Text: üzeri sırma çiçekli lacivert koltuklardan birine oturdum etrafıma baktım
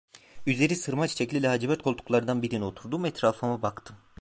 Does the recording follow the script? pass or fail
pass